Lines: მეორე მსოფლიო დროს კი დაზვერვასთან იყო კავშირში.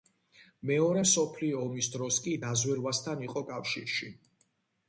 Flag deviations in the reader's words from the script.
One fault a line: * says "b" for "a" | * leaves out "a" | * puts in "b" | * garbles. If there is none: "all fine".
* puts in "ომის"